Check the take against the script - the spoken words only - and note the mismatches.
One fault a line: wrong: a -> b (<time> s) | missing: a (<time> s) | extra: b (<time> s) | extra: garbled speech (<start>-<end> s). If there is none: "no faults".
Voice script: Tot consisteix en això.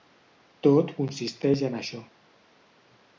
no faults